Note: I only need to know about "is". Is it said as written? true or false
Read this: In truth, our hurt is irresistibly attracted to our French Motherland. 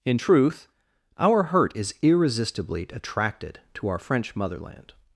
true